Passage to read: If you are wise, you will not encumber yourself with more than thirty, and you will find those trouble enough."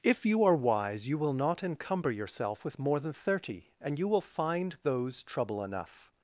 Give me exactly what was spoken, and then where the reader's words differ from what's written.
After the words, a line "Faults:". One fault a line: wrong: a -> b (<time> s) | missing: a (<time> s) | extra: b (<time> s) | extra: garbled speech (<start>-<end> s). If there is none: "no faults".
If you are wise, you will not encumber yourself with more than thirty, and you will find those trouble enough."
Faults:
no faults